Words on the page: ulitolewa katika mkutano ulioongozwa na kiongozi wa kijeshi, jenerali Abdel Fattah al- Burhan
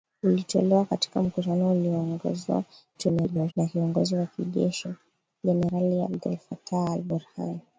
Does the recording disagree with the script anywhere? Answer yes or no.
yes